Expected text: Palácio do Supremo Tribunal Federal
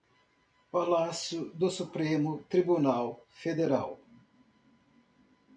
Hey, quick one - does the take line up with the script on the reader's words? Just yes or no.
yes